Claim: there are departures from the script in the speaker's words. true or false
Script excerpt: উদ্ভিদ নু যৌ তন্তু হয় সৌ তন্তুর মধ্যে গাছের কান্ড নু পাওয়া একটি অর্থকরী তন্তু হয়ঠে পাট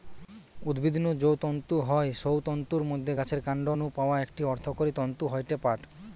false